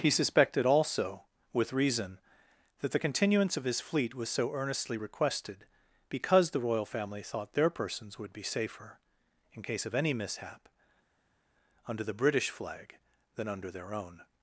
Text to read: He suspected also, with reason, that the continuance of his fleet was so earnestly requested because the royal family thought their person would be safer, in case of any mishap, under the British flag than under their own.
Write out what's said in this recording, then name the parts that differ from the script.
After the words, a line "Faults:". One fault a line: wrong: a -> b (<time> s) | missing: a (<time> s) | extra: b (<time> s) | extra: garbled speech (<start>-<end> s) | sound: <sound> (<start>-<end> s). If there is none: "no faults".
He suspected also, with reason, that the continuance of his fleet was so earnestly requested because the royal family thought their persons would be safer, in case of any mishap, under the British flag than under their own.
Faults:
wrong: person -> persons (7.7 s)